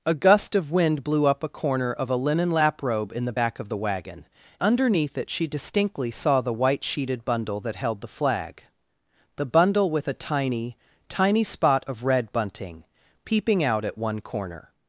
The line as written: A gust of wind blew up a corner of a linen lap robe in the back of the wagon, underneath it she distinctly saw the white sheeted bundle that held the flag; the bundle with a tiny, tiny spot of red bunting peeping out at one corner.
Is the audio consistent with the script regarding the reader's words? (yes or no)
yes